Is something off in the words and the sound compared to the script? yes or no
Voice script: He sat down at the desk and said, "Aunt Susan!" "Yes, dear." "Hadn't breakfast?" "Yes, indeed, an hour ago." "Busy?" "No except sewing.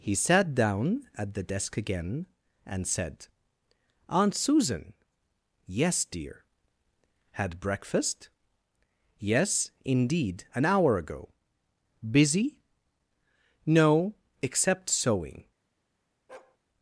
yes